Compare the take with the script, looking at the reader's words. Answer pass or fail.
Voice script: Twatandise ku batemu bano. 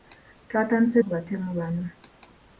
pass